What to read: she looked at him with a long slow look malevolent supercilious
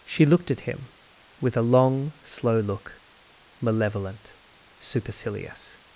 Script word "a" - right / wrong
right